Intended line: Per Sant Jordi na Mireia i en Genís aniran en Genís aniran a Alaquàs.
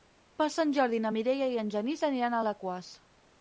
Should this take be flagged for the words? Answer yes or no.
yes